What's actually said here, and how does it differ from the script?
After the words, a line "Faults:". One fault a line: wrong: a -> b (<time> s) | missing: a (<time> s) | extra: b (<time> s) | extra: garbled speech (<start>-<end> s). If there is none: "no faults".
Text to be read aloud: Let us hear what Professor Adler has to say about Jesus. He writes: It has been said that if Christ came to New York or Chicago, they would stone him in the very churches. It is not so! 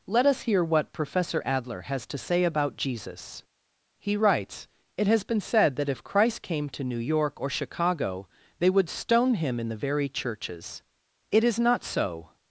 Let us hear what Professor Adler has to say about Jesus. He writes: It has been said that if Christ came to New York or Chicago, they would stone him in the very churches. It is not so!
Faults:
no faults